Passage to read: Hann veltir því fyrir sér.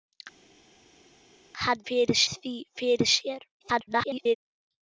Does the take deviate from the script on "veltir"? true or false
true